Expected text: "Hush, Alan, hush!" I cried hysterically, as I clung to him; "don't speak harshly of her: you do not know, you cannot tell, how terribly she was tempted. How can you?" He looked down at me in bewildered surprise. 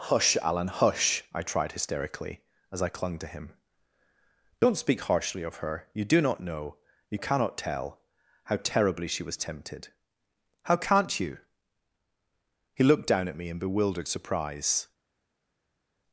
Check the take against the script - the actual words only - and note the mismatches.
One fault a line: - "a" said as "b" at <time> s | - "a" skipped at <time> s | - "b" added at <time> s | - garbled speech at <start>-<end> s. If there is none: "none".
- "cried" said as "tried" at 1.4 s
- "can" said as "can't" at 10.8 s